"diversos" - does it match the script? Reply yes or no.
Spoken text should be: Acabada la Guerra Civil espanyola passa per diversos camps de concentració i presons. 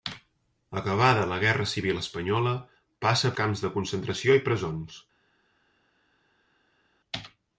no